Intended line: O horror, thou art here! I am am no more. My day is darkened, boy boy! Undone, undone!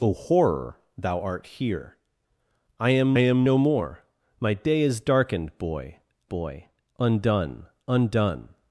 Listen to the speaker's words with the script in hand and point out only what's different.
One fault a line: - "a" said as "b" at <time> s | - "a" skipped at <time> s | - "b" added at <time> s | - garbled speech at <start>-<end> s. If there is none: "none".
none